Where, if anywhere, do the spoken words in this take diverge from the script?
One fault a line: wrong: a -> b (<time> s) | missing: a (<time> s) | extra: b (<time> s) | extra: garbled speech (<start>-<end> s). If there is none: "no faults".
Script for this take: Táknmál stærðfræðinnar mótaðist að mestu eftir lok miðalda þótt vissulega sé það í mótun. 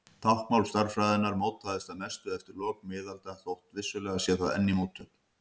extra: enn (4.5 s)